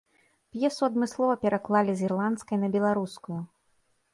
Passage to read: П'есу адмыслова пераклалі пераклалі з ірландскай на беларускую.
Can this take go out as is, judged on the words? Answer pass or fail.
fail